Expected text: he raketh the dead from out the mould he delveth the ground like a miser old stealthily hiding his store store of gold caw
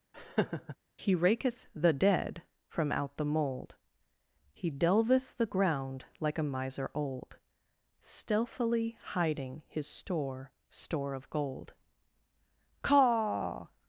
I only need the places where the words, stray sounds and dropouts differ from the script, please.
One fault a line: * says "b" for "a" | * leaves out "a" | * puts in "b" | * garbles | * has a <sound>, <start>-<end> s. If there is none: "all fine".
* has a laugh, 0.1-0.8 s